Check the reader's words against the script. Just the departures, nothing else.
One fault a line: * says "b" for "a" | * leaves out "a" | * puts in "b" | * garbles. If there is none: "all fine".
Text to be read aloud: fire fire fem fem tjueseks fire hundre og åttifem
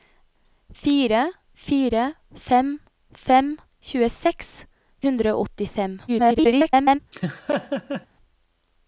* leaves out "fire"
* garbles